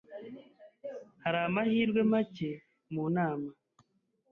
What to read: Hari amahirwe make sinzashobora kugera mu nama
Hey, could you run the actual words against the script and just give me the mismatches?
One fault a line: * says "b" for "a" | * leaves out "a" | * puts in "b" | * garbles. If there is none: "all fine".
* leaves out "sinzashobora kugera"